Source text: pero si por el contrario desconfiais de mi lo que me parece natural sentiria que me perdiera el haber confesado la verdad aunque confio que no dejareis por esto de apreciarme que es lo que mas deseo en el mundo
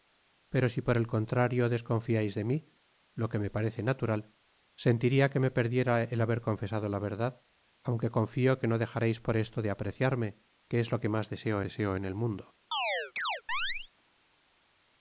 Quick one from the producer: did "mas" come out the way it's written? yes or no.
yes